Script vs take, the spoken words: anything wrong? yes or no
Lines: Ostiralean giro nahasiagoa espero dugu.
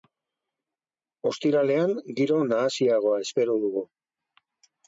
no